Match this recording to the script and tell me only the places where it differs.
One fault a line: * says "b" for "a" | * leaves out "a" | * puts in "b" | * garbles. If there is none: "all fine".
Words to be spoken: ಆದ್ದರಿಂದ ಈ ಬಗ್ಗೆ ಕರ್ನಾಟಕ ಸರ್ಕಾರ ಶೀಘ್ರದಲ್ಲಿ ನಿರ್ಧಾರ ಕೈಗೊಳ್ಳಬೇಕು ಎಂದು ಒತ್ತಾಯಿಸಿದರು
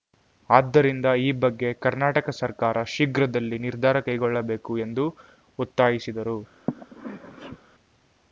all fine